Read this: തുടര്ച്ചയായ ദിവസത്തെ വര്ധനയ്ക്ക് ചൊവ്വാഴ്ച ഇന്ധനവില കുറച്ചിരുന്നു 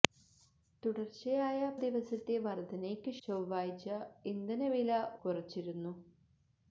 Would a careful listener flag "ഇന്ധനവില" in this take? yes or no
no